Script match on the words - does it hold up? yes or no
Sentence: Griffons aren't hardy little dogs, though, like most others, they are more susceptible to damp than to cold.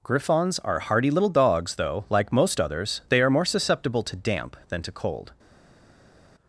no